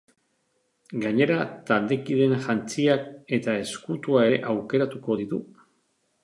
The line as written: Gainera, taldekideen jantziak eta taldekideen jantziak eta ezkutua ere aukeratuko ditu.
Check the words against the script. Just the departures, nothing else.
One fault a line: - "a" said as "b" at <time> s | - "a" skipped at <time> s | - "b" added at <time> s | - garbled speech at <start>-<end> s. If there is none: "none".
- "taldekideen jantziak eta" skipped at 3.5 s